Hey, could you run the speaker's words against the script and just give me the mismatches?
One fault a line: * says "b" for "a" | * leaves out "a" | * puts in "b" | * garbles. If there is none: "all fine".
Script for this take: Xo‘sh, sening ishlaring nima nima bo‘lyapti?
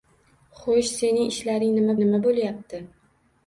all fine